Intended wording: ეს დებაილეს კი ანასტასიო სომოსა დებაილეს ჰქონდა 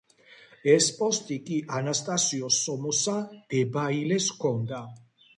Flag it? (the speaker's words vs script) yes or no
yes